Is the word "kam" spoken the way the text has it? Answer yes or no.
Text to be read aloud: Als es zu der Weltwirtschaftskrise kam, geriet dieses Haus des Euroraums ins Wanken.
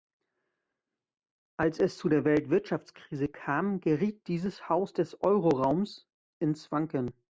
yes